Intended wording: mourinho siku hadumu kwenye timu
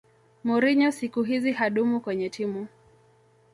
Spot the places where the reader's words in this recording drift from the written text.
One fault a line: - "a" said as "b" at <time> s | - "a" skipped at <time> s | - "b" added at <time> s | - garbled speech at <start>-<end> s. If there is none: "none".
- "hizi" added at 1.2 s